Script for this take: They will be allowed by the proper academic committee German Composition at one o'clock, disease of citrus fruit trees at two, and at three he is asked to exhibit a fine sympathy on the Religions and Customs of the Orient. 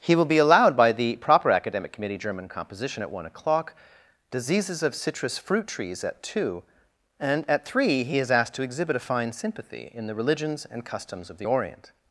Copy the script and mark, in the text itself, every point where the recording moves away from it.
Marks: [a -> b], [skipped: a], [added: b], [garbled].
[They -> He] will be allowed by the proper academic committee German Composition at one o'clock, [disease -> diseases] of citrus fruit trees at two, and at three he is asked to exhibit a fine sympathy [on -> in] the Religions and Customs of the Orient.